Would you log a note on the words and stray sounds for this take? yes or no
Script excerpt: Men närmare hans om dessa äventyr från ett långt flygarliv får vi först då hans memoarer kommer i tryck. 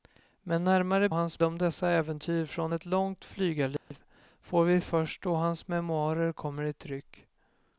yes